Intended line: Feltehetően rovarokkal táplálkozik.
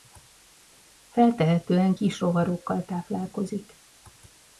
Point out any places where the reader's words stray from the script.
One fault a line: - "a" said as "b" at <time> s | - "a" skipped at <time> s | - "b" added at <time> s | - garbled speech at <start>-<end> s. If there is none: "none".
- "kis" added at 1.9 s